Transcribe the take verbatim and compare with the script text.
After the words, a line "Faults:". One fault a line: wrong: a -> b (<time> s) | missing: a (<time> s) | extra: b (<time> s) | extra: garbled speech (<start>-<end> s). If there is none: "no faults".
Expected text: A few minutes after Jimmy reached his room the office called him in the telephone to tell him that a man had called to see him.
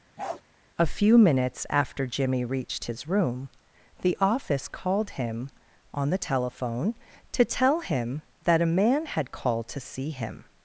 A few minutes after Jimmy reached his room the office called him on the telephone to tell him that a man had called to see him.
Faults:
wrong: in -> on (5.9 s)